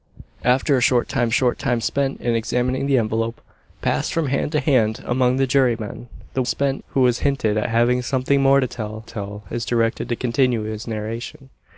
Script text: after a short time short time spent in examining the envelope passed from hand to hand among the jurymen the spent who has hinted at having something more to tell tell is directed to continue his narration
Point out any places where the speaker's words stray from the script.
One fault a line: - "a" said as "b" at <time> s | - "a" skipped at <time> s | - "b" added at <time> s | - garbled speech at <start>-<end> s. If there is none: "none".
none